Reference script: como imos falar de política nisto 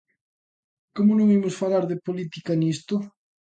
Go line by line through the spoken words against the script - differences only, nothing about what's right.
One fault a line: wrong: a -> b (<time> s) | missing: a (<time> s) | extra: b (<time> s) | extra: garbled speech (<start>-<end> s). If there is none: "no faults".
extra: non (1.1 s)